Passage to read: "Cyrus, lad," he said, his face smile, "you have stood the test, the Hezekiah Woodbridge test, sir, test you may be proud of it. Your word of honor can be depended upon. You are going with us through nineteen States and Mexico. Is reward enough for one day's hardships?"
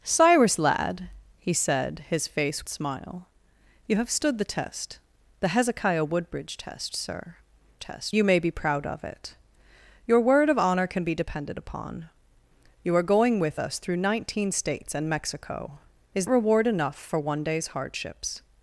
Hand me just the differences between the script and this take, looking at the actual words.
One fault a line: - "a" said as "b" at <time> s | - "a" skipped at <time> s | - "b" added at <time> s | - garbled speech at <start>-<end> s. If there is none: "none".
none